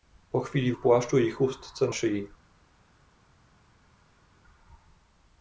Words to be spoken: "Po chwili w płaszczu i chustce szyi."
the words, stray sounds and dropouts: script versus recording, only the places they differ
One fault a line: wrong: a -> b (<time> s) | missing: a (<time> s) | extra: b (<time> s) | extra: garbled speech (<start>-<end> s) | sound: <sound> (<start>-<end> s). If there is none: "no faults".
no faults